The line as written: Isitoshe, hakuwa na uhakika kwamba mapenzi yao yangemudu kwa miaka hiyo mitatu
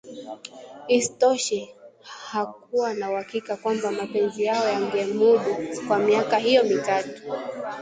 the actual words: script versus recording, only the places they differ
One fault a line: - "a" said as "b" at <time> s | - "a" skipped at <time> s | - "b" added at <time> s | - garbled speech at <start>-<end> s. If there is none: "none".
none